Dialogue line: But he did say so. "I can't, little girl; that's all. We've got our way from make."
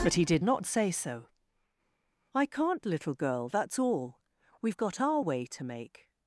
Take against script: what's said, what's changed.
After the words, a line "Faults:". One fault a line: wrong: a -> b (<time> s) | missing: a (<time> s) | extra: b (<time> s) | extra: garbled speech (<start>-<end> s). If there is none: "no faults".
But he did not say so. "I can't, little girl; that's all. We've got our way to make."
Faults:
extra: not (0.4 s)
wrong: from -> to (5.5 s)